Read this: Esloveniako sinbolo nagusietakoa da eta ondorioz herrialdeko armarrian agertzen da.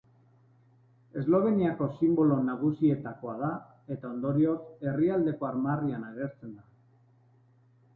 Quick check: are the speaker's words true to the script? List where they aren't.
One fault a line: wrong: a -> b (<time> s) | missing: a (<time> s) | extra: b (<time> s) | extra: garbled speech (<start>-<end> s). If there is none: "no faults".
no faults